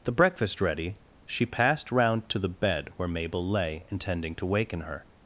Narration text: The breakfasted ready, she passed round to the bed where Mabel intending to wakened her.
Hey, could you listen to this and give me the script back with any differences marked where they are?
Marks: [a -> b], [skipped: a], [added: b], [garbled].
The [breakfasted -> breakfast] ready, she passed round to the bed where Mabel [added: lay] intending to [wakened -> waken] her.